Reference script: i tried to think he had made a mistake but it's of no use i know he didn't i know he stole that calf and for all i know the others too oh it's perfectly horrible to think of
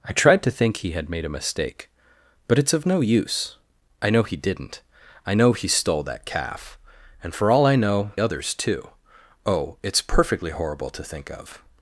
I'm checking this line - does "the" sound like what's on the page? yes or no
no